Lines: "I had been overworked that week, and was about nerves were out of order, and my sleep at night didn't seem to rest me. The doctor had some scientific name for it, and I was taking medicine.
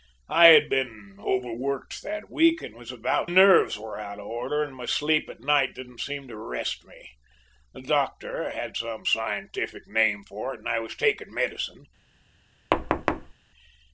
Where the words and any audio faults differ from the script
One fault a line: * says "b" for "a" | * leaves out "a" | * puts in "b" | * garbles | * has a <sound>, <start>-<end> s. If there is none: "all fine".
* has a thud, 12.7-13.3 s